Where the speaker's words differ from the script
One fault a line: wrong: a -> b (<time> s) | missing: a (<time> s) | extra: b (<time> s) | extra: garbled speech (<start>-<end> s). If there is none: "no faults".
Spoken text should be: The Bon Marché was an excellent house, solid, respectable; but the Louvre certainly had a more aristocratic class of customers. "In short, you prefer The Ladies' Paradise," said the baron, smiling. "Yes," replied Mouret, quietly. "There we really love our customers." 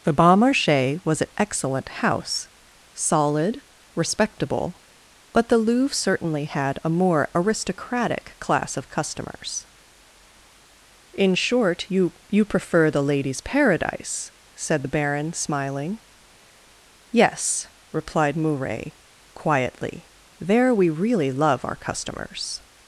extra: you (12.3 s)